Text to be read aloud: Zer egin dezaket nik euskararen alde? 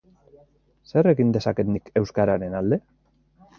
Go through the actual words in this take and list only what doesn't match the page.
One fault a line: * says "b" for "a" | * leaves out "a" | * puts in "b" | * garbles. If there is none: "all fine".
all fine